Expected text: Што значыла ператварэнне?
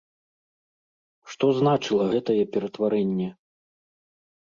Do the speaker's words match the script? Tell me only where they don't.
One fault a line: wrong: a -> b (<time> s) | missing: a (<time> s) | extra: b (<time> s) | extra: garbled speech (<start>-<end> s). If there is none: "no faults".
extra: гэтае (2.1 s)